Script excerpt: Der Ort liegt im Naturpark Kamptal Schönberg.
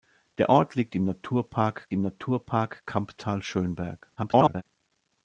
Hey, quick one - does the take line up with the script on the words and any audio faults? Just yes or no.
no